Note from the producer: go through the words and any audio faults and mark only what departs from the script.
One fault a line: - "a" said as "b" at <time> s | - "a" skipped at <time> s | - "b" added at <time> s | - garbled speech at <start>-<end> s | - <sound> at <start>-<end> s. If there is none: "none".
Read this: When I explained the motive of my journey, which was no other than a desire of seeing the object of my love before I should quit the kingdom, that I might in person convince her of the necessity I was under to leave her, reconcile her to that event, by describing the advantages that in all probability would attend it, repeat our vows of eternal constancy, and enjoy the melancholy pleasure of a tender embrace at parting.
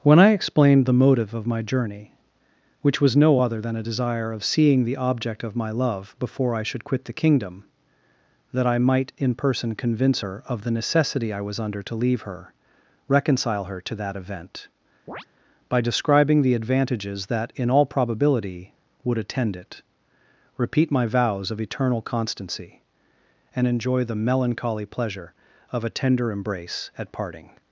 - chirp at 15.1-15.3 s
- "our" said as "my" at 20.9 s